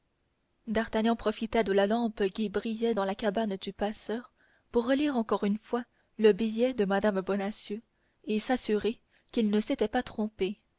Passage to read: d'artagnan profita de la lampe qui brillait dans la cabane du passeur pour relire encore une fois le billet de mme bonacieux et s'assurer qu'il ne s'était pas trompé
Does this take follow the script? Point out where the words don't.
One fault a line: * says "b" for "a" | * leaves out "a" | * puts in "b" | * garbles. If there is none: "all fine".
all fine